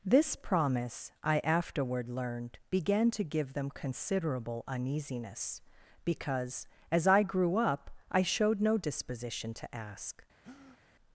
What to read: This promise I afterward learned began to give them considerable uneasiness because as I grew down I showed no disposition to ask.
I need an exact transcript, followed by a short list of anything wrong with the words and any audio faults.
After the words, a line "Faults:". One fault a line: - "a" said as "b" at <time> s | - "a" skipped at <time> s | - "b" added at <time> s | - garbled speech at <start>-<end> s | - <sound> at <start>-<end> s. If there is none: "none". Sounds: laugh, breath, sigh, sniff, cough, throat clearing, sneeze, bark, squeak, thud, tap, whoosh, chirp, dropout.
This promise I afterward learned began to give them considerable uneasiness because as I grew up I showed no disposition to ask.
Faults:
- "down" said as "up" at 7.6 s
- breath at 10.4-10.8 s